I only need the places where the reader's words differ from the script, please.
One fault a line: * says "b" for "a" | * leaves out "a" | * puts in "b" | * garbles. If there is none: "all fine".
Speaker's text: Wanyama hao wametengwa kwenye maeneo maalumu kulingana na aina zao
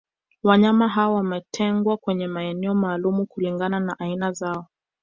all fine